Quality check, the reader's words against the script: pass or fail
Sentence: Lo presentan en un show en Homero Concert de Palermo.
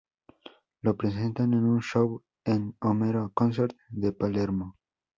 pass